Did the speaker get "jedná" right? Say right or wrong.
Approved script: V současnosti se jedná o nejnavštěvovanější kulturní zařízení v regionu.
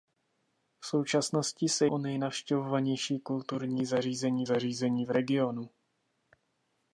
wrong